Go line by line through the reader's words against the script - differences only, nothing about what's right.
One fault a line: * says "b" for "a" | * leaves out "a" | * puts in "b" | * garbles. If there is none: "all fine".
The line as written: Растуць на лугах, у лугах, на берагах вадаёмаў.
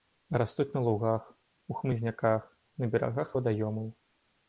* says "хмызняках" for "лугах"